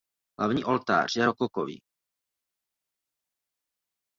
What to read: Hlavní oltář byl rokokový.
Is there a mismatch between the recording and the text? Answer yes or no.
yes